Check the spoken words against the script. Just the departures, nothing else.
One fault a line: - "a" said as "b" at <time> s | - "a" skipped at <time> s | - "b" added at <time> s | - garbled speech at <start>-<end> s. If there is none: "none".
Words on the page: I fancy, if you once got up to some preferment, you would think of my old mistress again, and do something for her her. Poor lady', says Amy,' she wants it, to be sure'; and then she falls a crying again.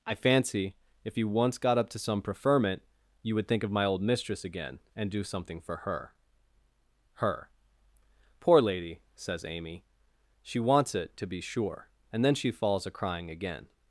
none